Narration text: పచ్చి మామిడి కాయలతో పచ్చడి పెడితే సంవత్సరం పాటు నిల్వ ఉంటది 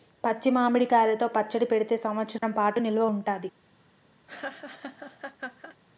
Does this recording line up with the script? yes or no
yes